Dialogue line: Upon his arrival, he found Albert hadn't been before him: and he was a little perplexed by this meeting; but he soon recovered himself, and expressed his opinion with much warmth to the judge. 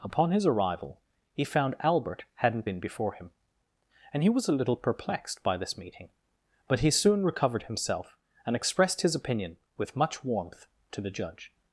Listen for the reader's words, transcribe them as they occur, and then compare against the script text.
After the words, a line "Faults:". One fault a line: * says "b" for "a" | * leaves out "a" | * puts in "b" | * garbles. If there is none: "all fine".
Upon his arrival, he found Albert hadn't been before him: and he was a little perplexed by this meeting; but he soon recovered himself, and expressed his opinion with much warmth to the judge.
Faults:
all fine